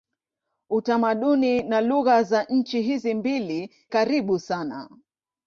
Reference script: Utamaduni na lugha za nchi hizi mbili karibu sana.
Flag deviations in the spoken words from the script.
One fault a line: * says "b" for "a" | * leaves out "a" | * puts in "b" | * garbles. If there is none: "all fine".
all fine